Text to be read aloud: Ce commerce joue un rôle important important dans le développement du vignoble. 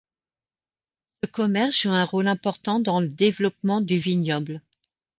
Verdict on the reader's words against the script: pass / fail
fail